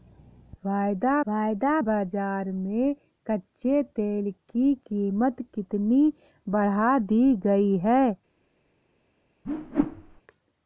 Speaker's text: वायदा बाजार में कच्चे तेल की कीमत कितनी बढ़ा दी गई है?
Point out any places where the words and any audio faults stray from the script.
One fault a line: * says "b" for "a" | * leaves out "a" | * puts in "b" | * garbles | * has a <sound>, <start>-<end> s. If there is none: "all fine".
* puts in "वायदा"
* has a whoosh, 9.4-10.2 s